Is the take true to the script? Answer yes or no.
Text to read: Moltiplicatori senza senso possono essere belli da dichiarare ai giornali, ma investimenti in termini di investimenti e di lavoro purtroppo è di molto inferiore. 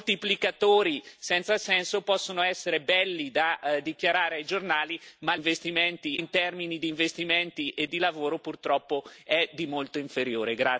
yes